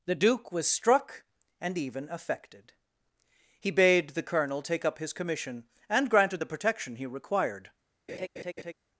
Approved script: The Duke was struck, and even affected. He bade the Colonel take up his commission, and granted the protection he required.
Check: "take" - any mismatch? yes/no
no